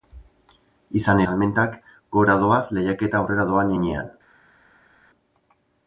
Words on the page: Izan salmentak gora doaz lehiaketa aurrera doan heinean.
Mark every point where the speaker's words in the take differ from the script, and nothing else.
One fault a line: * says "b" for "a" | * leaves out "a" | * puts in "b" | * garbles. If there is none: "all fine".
all fine